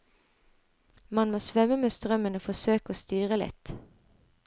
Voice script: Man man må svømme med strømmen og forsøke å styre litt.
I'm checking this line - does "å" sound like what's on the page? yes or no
yes